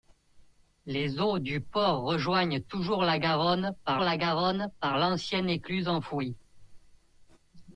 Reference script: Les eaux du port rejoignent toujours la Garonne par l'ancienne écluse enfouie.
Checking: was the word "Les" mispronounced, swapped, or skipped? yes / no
no